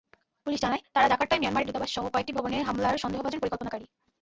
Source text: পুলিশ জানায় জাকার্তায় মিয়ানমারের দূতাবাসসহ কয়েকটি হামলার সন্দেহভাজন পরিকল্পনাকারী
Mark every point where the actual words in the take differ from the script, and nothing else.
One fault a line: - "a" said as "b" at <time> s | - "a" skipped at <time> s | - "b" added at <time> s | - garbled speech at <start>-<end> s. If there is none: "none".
- "তারা" added at 0.9 s
- "ভবনে" added at 2.4 s